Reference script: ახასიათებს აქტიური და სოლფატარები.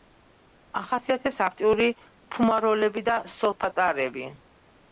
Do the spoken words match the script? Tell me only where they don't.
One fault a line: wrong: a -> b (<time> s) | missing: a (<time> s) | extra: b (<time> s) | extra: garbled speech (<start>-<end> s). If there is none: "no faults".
extra: ფუმაროლები (2.4 s)